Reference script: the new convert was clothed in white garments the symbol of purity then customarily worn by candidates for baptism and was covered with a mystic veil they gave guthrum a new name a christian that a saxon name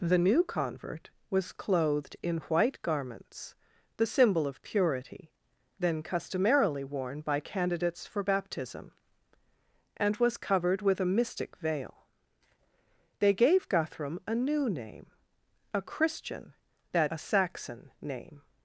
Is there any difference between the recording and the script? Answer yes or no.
no